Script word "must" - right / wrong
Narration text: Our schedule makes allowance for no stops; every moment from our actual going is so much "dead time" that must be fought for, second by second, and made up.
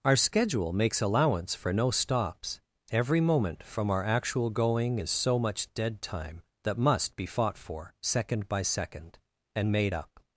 right